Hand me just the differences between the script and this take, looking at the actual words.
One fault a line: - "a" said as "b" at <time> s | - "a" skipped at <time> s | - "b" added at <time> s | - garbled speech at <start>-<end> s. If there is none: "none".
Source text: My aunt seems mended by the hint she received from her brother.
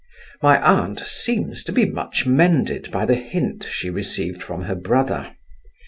- "to be much" added at 1.6 s